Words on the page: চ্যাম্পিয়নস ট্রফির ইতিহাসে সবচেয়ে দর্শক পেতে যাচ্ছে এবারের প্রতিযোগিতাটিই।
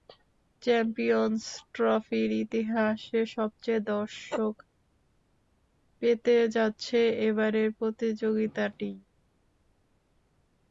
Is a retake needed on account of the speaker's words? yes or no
no